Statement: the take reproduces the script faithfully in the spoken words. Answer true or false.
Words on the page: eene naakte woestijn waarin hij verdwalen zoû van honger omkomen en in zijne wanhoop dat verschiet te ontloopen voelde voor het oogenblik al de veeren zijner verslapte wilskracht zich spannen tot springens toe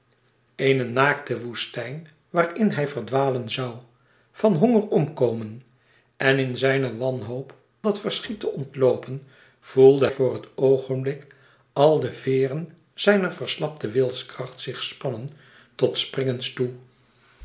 true